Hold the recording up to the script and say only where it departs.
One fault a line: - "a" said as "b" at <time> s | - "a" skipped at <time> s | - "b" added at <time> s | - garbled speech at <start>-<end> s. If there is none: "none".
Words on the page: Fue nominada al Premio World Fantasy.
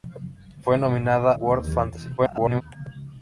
- "al Premio" skipped at 1.3 s
- garbled speech at 2.2-2.6 s